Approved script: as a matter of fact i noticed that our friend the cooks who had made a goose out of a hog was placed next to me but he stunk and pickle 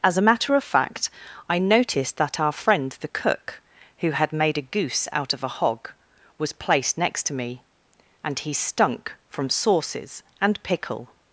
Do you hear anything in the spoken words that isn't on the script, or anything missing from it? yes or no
yes